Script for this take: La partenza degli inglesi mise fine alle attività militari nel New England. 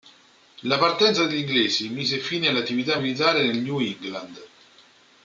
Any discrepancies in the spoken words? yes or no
no